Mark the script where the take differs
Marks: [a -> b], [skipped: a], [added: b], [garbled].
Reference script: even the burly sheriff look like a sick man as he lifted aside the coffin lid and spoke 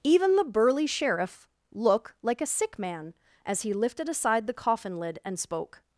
even the burly sheriff look like a sick man as he lifted aside the coffin lid and spoke